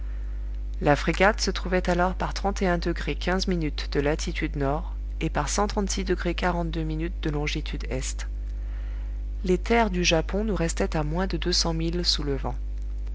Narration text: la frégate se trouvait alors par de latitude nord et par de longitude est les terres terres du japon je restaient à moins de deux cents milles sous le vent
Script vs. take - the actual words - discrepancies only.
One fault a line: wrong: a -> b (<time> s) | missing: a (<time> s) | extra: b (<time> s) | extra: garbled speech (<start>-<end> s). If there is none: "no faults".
missing: terres (9.9 s)
wrong: je -> nous (10.4 s)